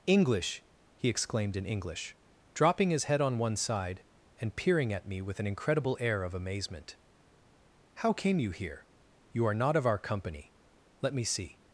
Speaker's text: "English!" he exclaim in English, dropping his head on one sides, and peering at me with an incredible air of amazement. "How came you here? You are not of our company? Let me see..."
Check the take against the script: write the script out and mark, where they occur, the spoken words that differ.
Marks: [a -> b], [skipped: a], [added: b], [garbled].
"English!" he [exclaim -> exclaimed] in English, dropping his head on one [sides, -> side] and peering at me with an incredible air of amazement. "How came you here? You are not of our company? Let me see..."